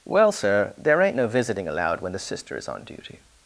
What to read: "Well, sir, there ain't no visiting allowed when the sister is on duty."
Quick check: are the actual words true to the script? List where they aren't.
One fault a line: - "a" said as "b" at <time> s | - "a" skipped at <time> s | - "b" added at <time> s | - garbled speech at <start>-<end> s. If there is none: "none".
none